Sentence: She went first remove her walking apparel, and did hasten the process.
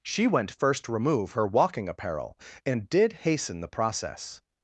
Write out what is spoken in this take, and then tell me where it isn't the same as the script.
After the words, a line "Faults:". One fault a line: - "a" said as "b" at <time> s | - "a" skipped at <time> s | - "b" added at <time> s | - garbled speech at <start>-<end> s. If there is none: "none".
She went first remove her walking apparel, and did hasten the process.
Faults:
none